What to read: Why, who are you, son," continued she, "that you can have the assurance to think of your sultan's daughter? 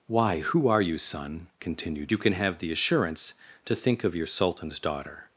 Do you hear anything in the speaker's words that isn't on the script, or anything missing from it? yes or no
yes